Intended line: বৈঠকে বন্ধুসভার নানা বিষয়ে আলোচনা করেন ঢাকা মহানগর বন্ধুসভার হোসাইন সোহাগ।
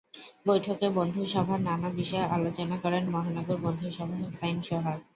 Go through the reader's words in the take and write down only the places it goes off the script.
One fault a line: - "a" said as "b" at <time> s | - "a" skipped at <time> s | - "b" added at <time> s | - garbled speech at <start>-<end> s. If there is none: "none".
- "ঢাকা" skipped at 3.0 s